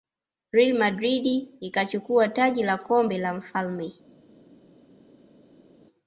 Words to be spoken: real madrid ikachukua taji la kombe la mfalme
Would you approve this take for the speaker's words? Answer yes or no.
yes